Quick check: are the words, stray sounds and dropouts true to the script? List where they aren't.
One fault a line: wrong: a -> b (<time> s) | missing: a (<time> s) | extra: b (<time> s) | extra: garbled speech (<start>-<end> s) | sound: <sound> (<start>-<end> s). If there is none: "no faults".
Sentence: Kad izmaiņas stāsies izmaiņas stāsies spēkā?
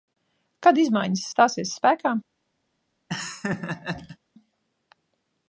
missing: izmaiņas stāsies (1.7 s)
sound: laugh (3.1-4.2 s)